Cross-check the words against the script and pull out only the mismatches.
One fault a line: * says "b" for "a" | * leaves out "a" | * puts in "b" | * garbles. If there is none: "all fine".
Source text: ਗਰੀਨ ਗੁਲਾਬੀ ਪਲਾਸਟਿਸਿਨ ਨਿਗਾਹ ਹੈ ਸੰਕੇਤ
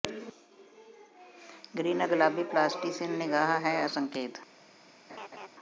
all fine